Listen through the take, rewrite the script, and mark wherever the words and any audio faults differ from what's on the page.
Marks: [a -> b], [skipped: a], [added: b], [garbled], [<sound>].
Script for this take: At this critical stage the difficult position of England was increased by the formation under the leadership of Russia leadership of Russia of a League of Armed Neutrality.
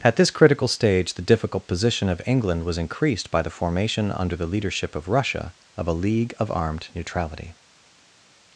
At this critical stage the difficult position of England was increased by the formation under the leadership of Russia [skipped: leadership of Russia] of a League of Armed Neutrality.